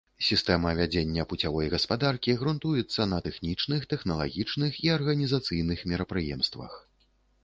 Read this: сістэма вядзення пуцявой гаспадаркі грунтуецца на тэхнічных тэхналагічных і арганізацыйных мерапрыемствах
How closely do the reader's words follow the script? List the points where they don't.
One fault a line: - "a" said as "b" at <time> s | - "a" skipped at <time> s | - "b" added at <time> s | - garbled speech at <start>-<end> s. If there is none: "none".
none